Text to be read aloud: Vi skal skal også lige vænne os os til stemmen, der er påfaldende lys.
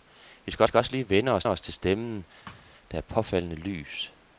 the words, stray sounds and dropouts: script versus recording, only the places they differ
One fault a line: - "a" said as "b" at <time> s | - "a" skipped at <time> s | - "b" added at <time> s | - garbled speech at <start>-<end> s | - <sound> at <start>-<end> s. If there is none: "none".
- thud at 2.5-2.7 s